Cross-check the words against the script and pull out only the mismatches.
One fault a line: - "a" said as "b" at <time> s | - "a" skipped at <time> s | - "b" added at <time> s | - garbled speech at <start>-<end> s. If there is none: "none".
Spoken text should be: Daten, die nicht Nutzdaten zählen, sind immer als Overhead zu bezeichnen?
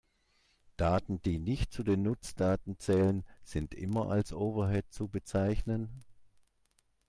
- "zu den" added at 1.7 s